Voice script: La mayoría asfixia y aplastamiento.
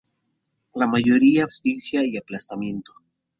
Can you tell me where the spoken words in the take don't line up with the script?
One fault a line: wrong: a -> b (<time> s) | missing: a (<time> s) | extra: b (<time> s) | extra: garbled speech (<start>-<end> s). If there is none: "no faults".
no faults